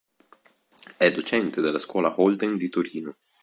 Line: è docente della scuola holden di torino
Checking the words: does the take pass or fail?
pass